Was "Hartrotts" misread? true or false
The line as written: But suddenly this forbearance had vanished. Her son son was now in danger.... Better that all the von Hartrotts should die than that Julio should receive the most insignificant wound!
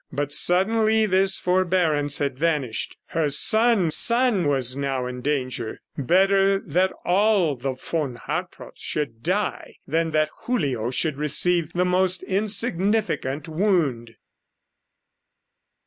false